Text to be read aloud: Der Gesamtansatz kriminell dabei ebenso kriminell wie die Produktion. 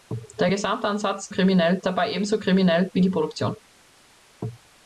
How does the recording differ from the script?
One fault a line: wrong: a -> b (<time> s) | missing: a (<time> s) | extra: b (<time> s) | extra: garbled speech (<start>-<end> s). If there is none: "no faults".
no faults